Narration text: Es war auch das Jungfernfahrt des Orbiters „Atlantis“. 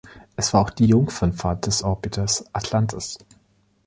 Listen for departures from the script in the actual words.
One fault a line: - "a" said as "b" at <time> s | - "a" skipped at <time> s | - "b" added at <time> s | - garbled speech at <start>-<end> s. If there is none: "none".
- "das" said as "die" at 0.7 s